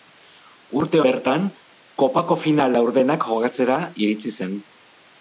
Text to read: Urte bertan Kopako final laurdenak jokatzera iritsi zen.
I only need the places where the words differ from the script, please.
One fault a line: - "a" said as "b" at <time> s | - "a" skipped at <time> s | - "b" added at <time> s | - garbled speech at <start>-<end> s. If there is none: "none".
none